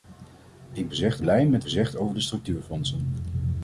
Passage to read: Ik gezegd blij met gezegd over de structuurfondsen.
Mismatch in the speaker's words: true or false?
false